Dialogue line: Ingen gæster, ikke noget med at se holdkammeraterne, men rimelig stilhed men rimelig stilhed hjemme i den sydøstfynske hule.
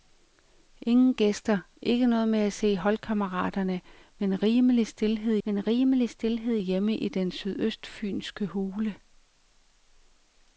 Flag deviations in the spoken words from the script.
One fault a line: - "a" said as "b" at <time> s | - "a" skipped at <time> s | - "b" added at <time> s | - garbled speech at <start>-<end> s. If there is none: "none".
none